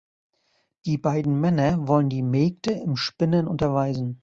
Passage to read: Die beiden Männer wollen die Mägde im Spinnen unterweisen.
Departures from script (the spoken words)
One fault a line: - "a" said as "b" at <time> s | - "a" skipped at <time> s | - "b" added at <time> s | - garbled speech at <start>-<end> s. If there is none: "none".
none